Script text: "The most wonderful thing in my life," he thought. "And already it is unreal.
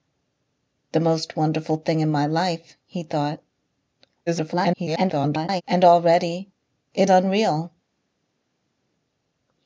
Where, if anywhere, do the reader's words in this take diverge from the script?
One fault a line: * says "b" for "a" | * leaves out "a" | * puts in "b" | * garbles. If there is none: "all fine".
* garbles
* leaves out "is"